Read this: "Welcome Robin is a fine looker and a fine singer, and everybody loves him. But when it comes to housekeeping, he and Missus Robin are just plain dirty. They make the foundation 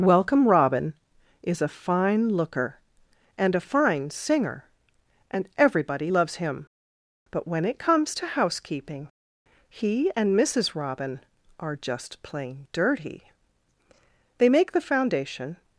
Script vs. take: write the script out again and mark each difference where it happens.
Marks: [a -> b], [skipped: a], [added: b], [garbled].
"Welcome Robin is a fine looker and a fine singer, and everybody loves him. But when it comes to housekeeping, he and Missus Robin are just plain dirty. They make the foundation